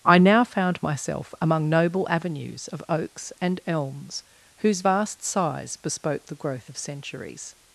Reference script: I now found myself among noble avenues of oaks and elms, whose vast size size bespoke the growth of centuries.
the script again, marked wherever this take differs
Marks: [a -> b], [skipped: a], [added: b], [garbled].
I now found myself among noble avenues of oaks and elms, whose vast size [skipped: size] bespoke the growth of centuries.